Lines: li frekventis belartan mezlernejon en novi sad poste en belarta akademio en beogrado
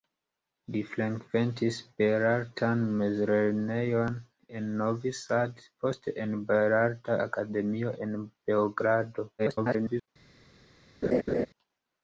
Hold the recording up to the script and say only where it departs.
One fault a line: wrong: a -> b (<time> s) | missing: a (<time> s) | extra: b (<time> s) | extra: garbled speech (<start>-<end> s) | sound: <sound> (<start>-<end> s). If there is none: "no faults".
extra: garbled speech (9.4-10.1 s)
sound: laugh (11.0-11.5 s)